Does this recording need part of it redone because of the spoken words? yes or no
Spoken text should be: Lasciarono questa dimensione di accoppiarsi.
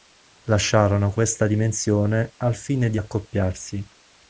yes